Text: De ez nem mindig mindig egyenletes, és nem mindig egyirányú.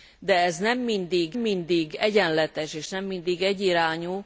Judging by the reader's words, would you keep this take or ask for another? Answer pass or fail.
pass